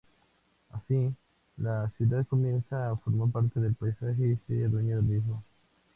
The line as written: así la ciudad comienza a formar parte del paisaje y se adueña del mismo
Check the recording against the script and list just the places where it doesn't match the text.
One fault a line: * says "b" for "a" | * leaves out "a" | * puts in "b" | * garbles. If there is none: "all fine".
all fine